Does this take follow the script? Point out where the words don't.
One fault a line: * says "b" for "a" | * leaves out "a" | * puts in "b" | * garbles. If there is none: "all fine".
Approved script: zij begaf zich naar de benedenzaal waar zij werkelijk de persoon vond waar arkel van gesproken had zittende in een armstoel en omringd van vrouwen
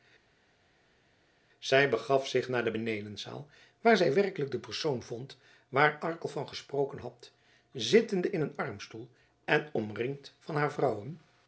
* puts in "haar"